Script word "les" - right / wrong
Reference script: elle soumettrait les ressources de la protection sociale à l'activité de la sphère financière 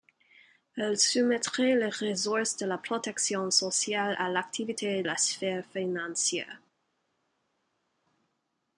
right